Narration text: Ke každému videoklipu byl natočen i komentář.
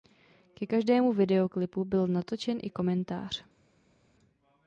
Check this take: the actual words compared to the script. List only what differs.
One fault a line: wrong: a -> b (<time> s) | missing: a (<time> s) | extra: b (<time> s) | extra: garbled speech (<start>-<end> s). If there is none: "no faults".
no faults